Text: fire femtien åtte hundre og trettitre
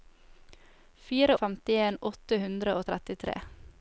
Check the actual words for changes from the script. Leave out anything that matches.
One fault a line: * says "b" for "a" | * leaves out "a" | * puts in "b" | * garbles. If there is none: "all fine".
all fine